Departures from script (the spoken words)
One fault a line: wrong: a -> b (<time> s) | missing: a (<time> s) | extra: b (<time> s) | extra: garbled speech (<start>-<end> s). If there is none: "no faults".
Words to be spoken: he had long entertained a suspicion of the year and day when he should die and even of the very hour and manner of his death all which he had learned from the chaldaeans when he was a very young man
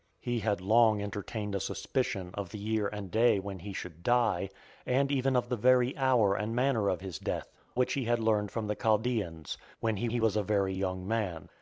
missing: all (7.5 s)
extra: he (10.1 s)